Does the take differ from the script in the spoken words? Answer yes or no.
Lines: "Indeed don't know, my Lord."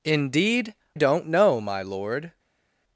no